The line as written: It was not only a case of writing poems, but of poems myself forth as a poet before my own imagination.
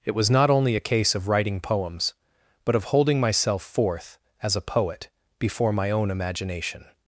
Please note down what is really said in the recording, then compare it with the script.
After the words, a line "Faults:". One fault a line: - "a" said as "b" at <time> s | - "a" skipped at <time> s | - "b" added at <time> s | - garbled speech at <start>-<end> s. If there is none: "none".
It was not only a case of writing poems, but of holding myself forth as a poet before my own imagination.
Faults:
- "poems" said as "holding" at 2.9 s